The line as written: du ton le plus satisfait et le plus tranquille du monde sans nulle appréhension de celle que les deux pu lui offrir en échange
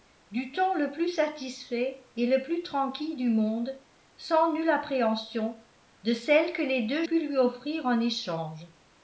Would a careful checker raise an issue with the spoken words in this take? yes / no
no